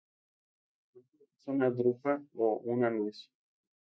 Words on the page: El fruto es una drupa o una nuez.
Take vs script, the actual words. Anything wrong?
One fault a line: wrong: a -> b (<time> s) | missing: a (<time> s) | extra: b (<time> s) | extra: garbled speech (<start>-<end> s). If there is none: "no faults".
no faults